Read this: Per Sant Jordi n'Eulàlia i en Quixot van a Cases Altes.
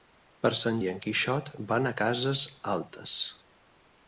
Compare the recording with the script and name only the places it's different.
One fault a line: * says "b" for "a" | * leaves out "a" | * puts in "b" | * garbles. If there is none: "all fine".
* leaves out "Jordi n'Eulàlia"